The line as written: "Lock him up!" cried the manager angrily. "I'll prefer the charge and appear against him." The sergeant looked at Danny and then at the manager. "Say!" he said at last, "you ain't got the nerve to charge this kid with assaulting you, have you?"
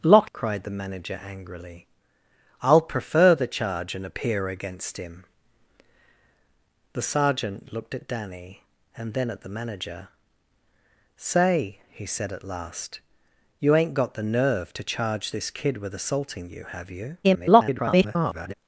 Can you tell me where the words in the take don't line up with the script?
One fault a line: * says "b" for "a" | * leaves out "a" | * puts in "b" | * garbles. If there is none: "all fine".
* leaves out "him up"
* garbles